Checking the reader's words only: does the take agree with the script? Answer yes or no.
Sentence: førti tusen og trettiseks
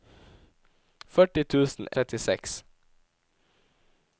yes